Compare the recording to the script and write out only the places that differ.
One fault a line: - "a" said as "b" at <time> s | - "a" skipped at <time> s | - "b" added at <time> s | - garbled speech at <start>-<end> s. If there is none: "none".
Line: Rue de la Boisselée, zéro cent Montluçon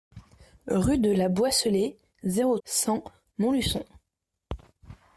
none